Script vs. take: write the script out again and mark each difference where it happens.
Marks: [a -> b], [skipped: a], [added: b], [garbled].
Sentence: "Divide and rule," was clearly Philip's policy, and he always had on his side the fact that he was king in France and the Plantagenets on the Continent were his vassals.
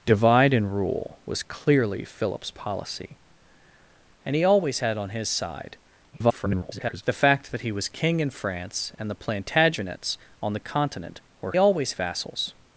"Divide and rule," was clearly Philip's policy, and he always had on his side [garbled] the fact that he was king in France and the Plantagenets on the Continent were [his -> always] vassals.